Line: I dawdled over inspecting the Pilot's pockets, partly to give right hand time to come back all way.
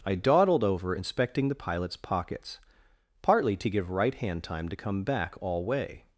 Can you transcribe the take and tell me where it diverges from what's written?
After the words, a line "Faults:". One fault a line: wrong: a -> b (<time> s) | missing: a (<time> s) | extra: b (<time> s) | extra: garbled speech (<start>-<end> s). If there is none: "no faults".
I dawdled over inspecting the Pilot's pockets, partly to give right hand time to come back all way.
Faults:
no faults